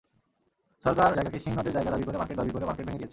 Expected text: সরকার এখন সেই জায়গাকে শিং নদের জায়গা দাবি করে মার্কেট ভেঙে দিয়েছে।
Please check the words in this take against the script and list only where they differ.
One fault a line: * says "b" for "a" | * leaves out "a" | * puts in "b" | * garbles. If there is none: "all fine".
* leaves out "এখন সেই"
* puts in "দাবি করে মার্কেট"